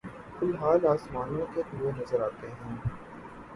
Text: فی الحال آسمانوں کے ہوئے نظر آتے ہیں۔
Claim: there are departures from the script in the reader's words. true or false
false